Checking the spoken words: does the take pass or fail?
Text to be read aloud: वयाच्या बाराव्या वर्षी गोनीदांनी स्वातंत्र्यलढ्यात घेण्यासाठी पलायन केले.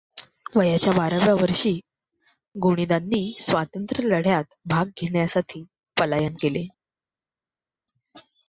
fail